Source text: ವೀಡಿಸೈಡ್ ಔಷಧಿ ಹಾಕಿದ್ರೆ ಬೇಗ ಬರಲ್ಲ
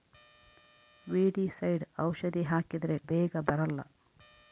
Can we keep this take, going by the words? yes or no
yes